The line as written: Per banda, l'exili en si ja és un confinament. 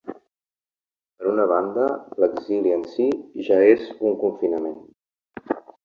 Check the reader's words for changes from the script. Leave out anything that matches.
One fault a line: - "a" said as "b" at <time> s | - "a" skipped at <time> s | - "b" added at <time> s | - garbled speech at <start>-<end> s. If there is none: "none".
- "una" added at 1.3 s